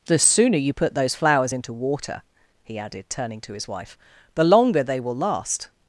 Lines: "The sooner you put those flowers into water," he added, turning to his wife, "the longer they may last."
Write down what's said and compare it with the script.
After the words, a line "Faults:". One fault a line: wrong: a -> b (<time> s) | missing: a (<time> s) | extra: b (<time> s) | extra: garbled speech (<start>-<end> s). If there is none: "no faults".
"The sooner you put those flowers into water," he added, turning to his wife, "the longer they will last."
Faults:
wrong: may -> will (5.0 s)